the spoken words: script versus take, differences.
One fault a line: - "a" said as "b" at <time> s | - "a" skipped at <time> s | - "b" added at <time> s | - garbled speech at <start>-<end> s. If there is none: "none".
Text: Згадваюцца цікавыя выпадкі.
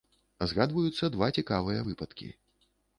- "два" added at 1.1 s